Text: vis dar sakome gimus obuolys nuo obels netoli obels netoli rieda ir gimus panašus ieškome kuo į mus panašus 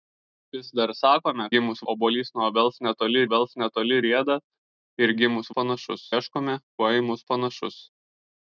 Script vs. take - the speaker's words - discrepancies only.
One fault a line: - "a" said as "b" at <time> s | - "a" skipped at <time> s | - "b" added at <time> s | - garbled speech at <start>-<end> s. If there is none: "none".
none